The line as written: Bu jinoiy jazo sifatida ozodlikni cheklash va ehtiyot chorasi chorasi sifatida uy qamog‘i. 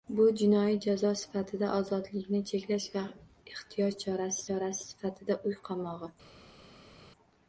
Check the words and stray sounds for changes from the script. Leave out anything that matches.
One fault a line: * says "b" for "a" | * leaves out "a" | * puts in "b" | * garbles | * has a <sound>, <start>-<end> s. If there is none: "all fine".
all fine